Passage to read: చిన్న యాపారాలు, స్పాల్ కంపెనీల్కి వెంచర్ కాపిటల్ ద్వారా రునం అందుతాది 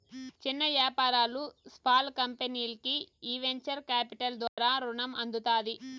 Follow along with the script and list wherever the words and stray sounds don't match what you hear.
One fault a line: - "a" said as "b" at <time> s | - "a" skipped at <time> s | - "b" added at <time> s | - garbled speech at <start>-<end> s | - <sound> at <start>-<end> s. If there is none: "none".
- "ఈ" added at 3.2 s
- dropout at 4.5-4.6 s